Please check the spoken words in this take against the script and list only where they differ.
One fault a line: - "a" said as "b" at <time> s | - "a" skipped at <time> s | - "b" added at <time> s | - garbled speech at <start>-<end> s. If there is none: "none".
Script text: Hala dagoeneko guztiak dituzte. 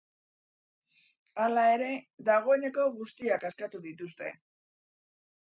- "ere" added at 1.7 s
- "askatu" added at 3.5 s